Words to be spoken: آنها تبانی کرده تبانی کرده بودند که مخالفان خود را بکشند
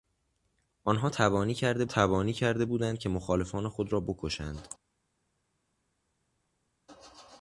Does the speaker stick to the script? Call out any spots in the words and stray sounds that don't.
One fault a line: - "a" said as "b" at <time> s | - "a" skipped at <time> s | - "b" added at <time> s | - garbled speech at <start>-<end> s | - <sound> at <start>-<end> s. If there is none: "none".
none